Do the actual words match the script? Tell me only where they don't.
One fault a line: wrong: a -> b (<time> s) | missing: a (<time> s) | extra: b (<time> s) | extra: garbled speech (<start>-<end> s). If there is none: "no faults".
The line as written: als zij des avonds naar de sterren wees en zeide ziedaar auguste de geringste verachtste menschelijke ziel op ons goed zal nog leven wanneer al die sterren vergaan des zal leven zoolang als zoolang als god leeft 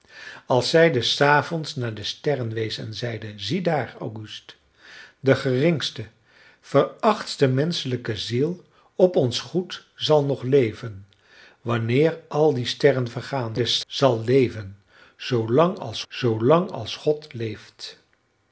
no faults